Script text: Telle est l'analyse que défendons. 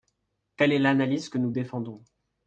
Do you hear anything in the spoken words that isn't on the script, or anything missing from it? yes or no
yes